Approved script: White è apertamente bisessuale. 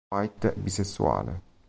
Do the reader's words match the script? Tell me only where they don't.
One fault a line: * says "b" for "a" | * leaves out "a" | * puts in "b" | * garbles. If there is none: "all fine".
* leaves out "è apertamente"